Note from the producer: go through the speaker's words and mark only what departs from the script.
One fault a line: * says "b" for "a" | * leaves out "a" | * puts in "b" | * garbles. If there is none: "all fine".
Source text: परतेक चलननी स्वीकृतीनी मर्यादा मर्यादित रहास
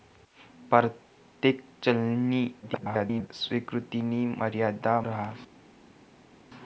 * garbles
* leaves out "मर्यादित"